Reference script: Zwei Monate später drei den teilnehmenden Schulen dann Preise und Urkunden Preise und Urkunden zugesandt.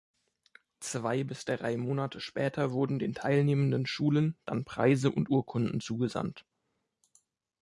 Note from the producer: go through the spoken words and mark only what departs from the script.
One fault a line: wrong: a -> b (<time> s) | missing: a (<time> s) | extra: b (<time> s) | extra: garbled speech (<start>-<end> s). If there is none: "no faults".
extra: bis drei (1.2 s)
wrong: drei -> wurden (2.7 s)
missing: Preise und Urkunden (5.8 s)